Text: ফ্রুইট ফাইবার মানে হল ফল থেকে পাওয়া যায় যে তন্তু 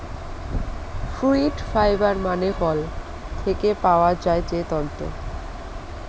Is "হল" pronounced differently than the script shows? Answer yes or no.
yes